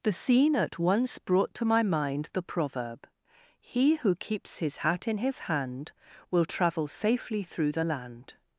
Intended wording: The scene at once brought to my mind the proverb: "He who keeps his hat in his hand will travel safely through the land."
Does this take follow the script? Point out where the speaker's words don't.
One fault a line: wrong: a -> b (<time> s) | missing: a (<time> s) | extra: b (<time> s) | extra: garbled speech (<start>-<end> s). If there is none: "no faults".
no faults